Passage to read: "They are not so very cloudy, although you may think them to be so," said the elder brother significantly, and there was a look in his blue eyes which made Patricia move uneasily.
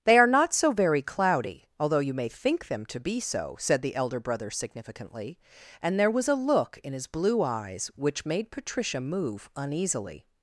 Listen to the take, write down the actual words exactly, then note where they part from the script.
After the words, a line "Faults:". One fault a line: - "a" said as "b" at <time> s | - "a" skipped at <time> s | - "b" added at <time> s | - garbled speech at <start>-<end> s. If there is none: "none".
"They are not so very cloudy, although you may think them to be so," said the elder brother significantly, and there was a look in his blue eyes which made Patricia move uneasily.
Faults:
none